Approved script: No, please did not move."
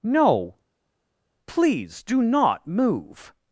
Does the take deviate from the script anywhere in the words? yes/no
yes